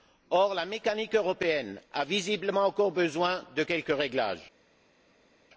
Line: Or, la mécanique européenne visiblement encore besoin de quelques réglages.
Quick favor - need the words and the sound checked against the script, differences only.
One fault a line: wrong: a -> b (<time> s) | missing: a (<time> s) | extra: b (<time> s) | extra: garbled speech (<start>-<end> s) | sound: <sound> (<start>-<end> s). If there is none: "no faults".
extra: a (1.9 s)